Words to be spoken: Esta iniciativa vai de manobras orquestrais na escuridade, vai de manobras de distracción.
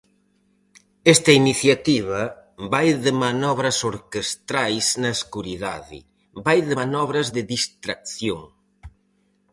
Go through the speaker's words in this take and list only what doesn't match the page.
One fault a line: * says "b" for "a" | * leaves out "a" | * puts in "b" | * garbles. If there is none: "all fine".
all fine